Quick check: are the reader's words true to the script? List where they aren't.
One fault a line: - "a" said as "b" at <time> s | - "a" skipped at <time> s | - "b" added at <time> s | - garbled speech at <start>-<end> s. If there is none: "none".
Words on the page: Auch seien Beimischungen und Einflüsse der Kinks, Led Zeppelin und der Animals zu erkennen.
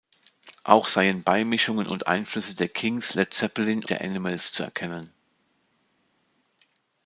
- "und" skipped at 3.8 s